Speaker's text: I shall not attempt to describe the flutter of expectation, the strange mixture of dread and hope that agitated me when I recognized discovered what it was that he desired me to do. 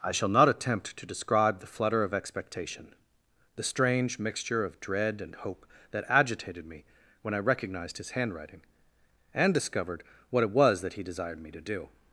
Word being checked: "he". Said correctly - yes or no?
yes